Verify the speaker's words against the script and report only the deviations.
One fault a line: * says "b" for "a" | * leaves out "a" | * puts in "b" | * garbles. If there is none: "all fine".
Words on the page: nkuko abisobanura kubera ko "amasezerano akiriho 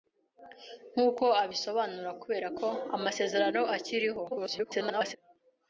* garbles